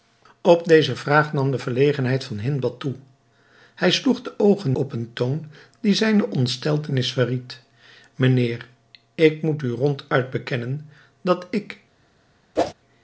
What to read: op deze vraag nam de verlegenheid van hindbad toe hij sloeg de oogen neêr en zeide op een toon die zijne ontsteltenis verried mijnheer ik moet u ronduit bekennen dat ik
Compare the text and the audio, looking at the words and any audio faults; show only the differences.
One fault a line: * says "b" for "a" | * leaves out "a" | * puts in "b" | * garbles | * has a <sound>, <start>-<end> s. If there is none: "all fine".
* leaves out "neêr en zeide"
* has a whoosh, 12.6-12.7 s